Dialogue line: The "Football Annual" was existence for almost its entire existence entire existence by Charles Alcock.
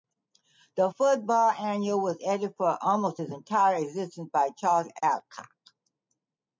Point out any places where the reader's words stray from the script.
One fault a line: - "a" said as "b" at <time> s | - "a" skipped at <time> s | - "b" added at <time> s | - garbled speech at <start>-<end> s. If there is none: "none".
- "existence" said as "edited" at 2.2 s
- "entire existence" skipped at 4.3 s